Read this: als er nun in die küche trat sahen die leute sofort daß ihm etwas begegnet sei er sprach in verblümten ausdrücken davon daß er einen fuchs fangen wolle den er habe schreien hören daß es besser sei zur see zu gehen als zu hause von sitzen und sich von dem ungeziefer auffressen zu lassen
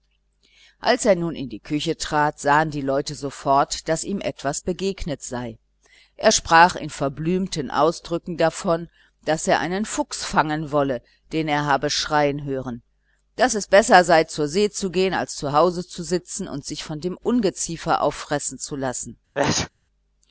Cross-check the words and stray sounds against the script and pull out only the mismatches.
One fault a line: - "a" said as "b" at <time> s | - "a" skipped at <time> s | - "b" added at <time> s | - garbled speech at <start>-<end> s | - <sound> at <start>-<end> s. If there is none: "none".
- "von" said as "zu" at 15.9 s
- sneeze at 19.3-19.7 s